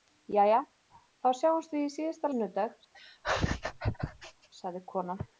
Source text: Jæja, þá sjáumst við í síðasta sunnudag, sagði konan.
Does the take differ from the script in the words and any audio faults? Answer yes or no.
yes